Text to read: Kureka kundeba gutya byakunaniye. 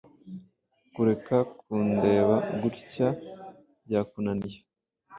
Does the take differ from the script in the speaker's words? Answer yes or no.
no